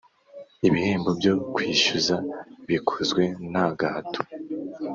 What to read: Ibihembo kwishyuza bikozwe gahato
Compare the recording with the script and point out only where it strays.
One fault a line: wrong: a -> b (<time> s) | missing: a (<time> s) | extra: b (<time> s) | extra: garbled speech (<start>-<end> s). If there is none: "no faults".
extra: byo (1.2 s)
extra: nta (3.5 s)